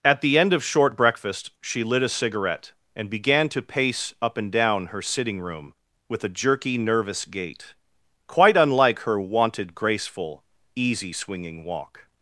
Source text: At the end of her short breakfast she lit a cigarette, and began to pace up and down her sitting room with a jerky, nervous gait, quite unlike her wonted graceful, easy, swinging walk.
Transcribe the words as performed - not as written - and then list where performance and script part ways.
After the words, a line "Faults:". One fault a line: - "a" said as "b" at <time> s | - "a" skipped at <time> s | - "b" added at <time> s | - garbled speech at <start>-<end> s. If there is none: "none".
At the end of short breakfast she lit a cigarette, and began to pace up and down her sitting room with a jerky, nervous gait, quite unlike her wonted graceful, easy, swinging walk.
Faults:
- "her" skipped at 0.6 s